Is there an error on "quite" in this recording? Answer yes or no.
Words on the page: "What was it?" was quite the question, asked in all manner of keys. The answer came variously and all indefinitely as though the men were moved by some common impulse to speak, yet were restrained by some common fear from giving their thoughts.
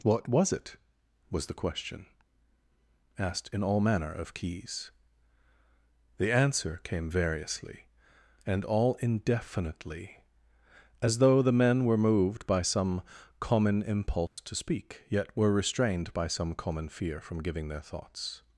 yes